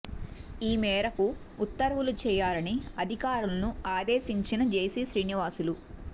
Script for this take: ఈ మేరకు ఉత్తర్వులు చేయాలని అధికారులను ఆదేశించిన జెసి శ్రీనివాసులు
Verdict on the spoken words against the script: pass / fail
pass